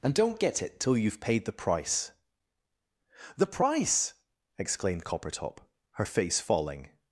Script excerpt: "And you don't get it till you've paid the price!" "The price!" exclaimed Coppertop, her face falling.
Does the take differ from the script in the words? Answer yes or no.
yes